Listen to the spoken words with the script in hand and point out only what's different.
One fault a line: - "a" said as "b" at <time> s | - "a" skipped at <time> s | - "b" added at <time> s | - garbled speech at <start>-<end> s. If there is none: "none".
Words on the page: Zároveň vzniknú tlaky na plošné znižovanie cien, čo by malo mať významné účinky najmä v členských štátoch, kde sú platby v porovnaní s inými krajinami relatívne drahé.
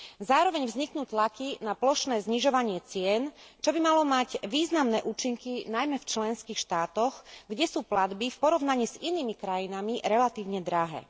none